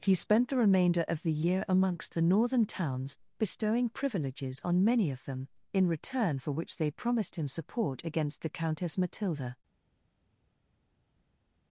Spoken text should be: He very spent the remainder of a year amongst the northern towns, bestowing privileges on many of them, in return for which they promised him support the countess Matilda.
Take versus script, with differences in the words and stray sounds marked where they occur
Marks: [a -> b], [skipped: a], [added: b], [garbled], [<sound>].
He [skipped: very] spent the remainder of [a -> the] year amongst the northern towns, bestowing privileges on many of them, in return for which they promised him support [added: against] the countess Matilda.